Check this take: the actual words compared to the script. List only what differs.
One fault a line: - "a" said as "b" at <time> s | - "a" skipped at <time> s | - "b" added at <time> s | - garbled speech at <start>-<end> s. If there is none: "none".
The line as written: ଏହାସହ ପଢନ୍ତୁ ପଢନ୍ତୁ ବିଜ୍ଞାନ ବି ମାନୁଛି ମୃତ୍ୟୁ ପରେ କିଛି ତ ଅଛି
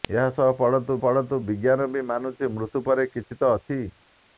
none